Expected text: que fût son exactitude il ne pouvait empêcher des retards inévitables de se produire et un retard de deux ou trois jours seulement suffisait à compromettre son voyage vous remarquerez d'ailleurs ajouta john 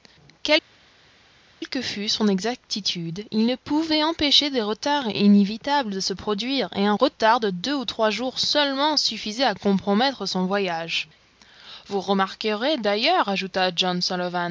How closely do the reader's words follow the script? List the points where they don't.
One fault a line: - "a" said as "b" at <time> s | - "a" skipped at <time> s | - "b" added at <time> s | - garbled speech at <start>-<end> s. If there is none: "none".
none